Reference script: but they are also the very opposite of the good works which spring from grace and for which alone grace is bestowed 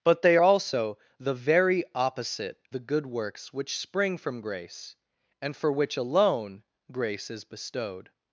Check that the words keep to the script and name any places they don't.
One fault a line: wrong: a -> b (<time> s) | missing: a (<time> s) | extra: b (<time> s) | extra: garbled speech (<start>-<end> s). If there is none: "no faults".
missing: are (0.4 s)
missing: of (2.6 s)